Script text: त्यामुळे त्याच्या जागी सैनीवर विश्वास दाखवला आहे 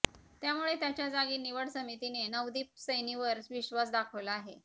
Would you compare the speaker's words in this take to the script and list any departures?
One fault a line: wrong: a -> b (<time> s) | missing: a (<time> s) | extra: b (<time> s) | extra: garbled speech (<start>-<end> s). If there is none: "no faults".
extra: निवड समितीने नवदीप (1.4 s)